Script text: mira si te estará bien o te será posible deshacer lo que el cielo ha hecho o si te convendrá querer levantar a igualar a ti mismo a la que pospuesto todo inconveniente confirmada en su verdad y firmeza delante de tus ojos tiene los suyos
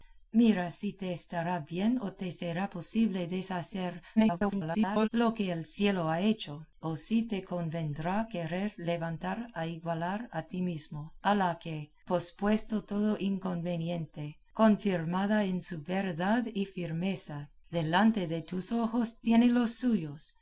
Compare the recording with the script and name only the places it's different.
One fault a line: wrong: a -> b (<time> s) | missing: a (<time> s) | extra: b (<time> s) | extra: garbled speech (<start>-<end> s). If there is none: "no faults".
extra: garbled speech (4.2-5.1 s)